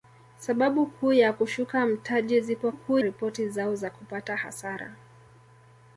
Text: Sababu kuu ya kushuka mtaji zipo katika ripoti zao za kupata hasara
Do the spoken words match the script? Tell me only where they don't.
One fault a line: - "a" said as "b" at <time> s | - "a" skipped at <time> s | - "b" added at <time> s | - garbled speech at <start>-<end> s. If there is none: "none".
- "katika" said as "kuu" at 2.7 s